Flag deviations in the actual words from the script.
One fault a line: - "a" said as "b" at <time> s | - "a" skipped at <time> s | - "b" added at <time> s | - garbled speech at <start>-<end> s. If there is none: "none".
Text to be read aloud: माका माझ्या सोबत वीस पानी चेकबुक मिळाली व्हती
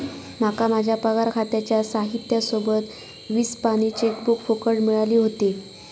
- "पगार खात्याच्या साहित्या" added at 1.0 s
- "फुकट" added at 4.4 s